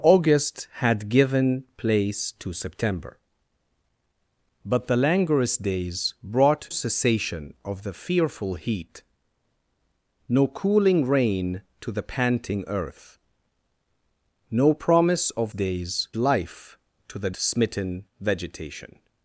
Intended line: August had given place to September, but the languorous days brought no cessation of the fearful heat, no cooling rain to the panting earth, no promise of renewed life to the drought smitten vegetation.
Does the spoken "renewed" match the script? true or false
false